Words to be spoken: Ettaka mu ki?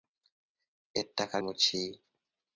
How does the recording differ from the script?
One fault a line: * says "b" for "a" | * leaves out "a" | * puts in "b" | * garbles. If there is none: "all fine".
all fine